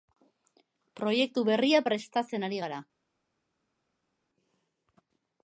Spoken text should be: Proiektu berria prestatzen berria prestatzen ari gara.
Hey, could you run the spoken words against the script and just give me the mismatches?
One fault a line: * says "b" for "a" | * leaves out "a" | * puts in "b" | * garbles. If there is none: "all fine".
* leaves out "berria prestatzen"